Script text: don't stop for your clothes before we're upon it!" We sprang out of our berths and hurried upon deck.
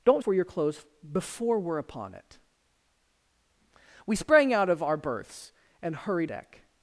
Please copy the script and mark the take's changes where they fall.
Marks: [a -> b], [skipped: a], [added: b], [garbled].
don't [skipped: stop] for your clothes before we're upon it!" We sprang out of our berths and hurried [skipped: upon] deck.